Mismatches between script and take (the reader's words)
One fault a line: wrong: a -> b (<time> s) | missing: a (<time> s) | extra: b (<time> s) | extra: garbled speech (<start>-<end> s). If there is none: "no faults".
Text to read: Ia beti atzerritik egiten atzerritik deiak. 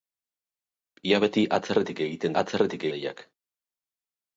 no faults